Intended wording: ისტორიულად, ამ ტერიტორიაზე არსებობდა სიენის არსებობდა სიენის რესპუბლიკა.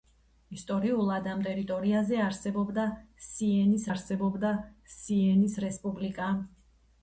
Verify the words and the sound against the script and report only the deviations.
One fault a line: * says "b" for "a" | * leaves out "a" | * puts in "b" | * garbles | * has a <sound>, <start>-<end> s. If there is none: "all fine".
all fine